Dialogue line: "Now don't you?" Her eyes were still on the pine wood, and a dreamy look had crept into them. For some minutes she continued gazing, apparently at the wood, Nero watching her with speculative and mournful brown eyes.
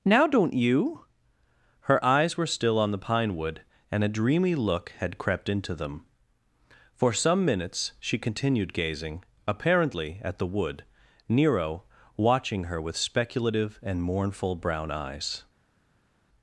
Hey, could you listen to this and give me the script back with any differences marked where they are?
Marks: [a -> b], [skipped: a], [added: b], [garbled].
"Now don't you?" Her eyes were still on the pine wood, and a dreamy look had crept into them. For some minutes she continued gazing, apparently at the wood, Nero watching her with speculative and mournful brown eyes.